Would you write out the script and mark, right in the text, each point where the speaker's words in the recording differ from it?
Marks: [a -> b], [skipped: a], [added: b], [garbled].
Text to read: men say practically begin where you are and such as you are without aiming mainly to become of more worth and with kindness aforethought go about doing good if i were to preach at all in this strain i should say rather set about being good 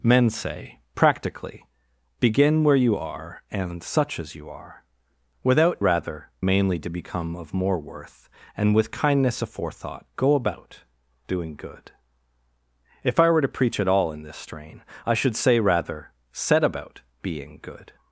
men say practically begin where you are and such as you are without [aiming -> rather] mainly to become of more worth and with kindness aforethought go about doing good if i were to preach at all in this strain i should say rather set about being good